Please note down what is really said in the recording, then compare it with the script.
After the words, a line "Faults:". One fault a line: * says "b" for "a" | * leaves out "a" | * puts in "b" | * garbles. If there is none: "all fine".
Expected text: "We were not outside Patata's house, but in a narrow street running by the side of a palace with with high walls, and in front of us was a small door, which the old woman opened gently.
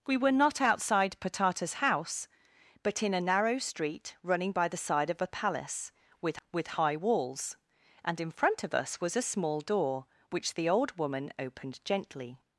"We were not outside Patata's house, but in a narrow street running by the side of a palace with with high walls, and in front of us was a small door, which the old woman opened gently.
Faults:
all fine